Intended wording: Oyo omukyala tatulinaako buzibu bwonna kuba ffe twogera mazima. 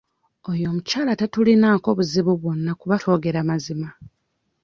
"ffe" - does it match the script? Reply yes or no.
no